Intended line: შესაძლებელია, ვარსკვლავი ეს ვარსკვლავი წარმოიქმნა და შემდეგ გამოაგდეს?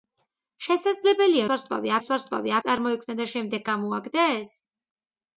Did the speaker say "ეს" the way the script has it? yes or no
yes